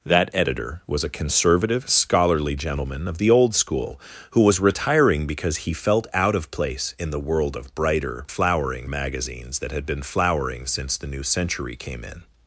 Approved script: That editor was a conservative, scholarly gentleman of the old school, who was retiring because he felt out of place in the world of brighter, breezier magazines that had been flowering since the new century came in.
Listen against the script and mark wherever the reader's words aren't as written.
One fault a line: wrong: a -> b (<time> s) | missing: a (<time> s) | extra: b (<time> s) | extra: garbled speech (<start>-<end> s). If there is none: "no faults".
wrong: breezier -> flowering (8.3 s)